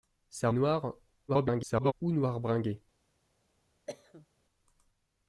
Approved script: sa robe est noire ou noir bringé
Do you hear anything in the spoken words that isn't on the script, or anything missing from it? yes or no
yes